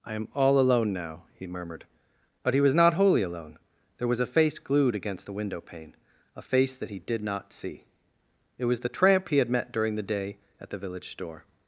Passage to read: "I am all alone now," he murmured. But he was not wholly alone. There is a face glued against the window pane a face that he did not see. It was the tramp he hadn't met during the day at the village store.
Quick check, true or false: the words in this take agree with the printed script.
false